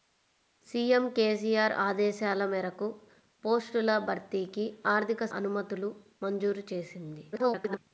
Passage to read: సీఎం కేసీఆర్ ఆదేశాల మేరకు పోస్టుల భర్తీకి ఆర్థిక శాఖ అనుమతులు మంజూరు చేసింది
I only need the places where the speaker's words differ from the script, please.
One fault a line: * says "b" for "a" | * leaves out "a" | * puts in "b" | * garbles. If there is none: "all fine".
* leaves out "శాఖ"
* garbles